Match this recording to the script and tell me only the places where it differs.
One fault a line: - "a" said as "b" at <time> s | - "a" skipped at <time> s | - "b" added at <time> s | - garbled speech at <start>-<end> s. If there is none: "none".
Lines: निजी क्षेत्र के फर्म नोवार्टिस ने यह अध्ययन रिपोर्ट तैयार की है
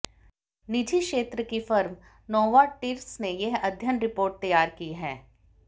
- "के" said as "की" at 1.4 s